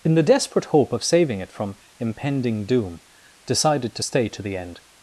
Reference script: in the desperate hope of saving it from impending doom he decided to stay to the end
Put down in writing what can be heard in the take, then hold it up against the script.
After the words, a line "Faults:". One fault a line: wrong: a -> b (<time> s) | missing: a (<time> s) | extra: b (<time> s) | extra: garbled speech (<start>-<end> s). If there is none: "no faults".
in the desperate hope of saving it from impending doom decided to stay to the end
Faults:
missing: he (3.0 s)